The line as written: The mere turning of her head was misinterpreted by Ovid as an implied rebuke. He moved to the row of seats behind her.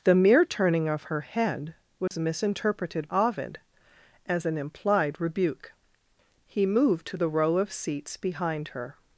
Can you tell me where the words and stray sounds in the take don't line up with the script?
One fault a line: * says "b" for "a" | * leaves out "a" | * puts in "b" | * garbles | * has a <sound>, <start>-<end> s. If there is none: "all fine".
* has a dropout, 2.1-2.1 s
* leaves out "by"